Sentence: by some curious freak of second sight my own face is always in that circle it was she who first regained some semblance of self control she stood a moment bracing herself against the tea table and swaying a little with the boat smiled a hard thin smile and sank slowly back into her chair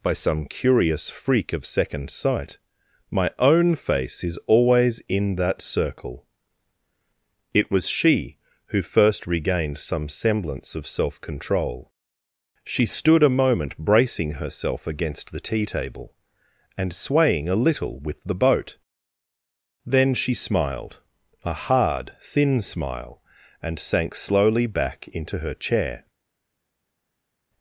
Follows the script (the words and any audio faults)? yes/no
no